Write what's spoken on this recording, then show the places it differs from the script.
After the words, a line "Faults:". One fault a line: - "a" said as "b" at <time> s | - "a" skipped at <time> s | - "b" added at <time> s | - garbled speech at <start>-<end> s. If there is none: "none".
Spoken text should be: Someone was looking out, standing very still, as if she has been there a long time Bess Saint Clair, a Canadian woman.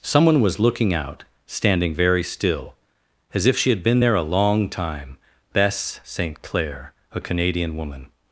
Someone was looking out, standing very still, as if she had been there a long time Bess Saint Clair, a Canadian woman.
Faults:
- "has" said as "had" at 3.7 s